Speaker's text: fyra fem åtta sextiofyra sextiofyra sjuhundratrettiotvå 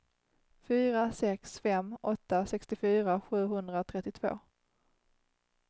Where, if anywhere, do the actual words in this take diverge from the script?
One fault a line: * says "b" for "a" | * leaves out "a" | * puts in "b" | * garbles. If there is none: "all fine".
* puts in "sex"
* leaves out "sextiofyra"